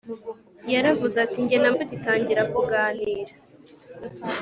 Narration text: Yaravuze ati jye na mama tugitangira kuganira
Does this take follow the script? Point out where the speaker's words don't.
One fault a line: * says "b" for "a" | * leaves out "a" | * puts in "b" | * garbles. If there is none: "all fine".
* leaves out "mama"